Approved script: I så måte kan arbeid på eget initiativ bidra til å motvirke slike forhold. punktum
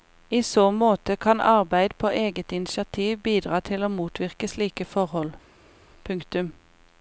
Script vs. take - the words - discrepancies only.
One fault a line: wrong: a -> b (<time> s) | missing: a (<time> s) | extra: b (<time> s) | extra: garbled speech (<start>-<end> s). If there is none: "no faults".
no faults